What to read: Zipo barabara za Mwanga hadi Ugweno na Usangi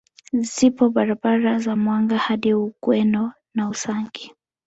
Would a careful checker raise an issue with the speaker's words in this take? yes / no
no